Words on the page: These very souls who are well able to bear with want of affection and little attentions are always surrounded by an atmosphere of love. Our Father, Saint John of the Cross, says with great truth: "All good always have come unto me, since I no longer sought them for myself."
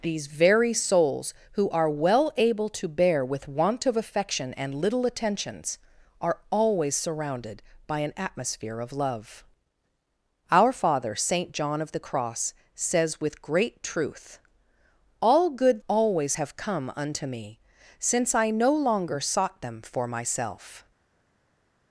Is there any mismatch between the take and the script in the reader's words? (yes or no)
no